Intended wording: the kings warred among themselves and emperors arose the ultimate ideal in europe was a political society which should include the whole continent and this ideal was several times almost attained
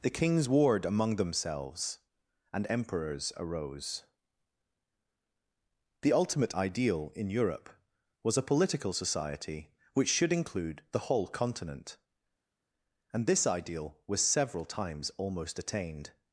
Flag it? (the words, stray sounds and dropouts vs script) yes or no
no